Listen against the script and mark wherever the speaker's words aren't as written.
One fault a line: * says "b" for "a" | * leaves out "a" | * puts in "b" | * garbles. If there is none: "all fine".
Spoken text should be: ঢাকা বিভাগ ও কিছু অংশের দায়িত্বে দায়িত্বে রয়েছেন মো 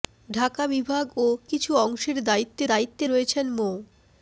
all fine